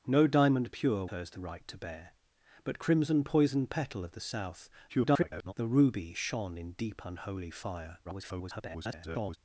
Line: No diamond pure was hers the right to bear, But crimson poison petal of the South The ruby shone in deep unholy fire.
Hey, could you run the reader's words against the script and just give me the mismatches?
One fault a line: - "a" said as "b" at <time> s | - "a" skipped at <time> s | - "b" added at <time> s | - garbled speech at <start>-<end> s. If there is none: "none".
- "was" skipped at 1.1 s
- garbled speech at 4.9-5.5 s
- garbled speech at 8.0-9.4 s